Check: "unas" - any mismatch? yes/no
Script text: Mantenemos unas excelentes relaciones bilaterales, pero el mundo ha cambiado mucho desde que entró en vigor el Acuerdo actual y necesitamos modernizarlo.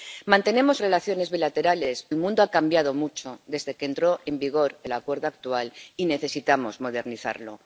yes